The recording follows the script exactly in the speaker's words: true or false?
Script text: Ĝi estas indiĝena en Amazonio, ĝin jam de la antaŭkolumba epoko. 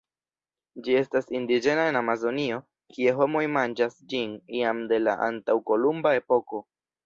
false